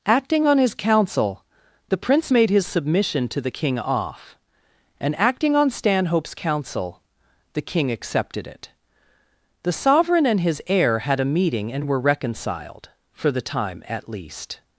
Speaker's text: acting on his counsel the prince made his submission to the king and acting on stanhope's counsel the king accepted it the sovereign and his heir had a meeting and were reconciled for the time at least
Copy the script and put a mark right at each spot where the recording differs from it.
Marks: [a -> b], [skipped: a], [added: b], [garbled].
acting on his counsel the prince made his submission to the king [added: off] and acting on stanhope's counsel the king accepted it the sovereign and his heir had a meeting and were reconciled for the time at least